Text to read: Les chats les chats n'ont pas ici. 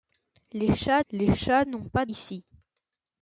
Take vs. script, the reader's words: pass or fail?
pass